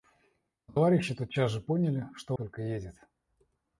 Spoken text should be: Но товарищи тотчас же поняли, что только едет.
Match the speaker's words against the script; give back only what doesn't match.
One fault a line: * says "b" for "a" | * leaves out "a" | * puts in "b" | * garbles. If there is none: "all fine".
all fine